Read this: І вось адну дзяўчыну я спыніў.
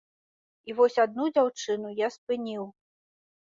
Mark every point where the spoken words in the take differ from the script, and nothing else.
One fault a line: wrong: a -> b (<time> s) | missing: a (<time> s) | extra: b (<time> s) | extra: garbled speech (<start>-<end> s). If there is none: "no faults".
no faults